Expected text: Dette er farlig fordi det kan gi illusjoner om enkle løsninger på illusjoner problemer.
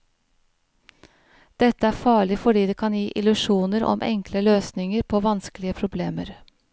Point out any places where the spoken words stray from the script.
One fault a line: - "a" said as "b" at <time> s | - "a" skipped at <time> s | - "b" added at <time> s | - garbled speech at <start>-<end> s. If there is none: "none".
- "illusjoner" said as "vanskelige" at 5.3 s